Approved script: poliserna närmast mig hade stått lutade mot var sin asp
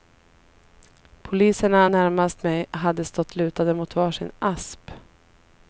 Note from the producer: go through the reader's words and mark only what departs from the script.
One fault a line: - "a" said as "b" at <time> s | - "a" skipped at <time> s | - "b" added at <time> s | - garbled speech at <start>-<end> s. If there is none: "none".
none